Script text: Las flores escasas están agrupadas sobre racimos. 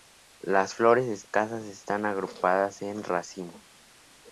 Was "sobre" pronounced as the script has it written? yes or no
no